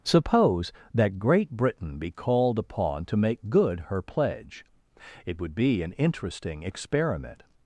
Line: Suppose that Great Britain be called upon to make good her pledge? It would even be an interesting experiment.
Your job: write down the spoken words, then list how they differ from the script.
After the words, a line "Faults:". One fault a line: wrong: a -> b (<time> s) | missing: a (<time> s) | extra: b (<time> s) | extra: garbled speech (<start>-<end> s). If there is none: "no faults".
Suppose that Great Britain be called upon to make good her pledge? It would be an interesting experiment.
Faults:
missing: even (5.5 s)